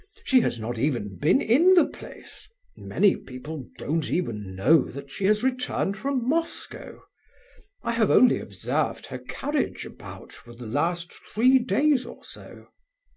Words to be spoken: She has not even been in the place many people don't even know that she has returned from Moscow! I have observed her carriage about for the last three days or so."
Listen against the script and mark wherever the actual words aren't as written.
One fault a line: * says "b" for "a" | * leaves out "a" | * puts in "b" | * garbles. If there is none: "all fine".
* puts in "only"